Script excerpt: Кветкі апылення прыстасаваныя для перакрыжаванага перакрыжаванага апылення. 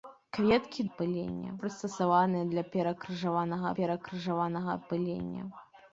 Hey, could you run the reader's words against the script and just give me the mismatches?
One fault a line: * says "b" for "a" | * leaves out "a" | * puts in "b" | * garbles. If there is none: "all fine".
all fine